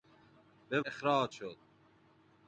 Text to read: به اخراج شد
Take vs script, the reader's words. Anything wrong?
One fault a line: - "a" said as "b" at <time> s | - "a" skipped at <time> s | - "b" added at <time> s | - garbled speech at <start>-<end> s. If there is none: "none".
none